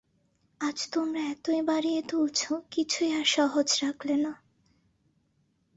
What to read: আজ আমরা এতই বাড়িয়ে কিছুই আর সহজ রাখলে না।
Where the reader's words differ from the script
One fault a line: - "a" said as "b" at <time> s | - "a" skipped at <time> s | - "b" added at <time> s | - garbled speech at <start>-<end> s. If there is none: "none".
- "আমরা" said as "তোমরা" at 0.9 s
- "তুলছ" added at 2.0 s